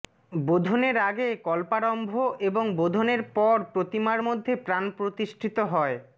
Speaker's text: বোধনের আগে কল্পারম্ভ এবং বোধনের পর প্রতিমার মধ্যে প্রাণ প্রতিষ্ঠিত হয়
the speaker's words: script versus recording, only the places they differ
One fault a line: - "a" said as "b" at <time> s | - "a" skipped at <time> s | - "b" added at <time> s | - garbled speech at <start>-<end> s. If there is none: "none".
none